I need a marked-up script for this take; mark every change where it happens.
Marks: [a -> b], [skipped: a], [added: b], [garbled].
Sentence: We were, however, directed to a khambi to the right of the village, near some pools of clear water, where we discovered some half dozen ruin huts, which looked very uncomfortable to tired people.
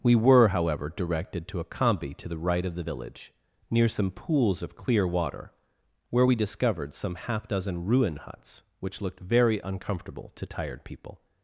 We were, however, directed to a khambi to the right of the village, near some pools of clear water, where we discovered some half dozen ruin huts, which looked very uncomfortable to tired people.